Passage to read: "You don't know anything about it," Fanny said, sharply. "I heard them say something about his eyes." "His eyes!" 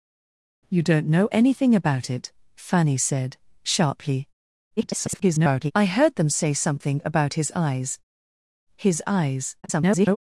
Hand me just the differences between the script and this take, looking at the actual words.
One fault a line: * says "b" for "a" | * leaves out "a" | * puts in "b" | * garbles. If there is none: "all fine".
* garbles
* garbles